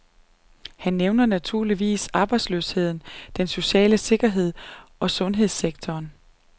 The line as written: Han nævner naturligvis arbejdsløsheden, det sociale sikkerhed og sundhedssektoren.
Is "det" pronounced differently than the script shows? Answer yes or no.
yes